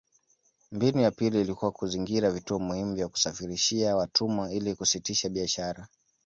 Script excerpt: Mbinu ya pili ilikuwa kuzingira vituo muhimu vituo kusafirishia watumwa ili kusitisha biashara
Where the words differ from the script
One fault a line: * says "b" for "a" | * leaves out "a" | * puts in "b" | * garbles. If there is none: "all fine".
* says "vya" for "vituo"